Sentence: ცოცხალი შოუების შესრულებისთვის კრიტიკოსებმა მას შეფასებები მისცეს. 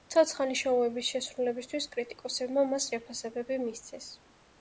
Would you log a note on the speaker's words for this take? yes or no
no